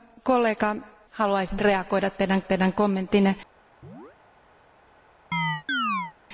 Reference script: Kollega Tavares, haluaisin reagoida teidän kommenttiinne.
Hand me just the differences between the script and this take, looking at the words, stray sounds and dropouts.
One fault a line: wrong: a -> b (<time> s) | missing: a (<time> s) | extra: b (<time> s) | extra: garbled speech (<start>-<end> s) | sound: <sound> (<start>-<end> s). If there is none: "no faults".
missing: Tavares (0.8 s)
extra: teidän (2.4 s)
sound: chirp (3.8-4.2 s)
sound: chirp (5.3-6.1 s)